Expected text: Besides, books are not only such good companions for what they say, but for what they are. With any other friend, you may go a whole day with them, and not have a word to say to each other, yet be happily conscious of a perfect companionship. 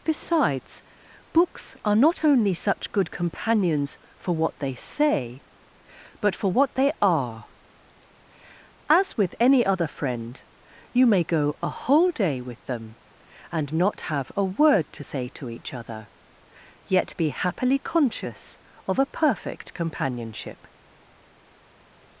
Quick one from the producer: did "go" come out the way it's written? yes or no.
yes